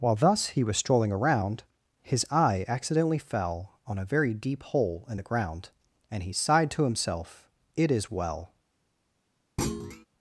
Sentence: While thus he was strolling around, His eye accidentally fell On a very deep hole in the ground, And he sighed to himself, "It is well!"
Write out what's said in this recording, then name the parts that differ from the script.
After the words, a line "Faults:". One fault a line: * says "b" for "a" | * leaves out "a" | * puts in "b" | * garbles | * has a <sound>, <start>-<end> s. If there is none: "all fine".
While thus he was strolling around, His eye accidentally fell On a very deep hole in the ground, And he sighed to himself, "It is well!"
Faults:
* has a thud, 9.6-10.1 s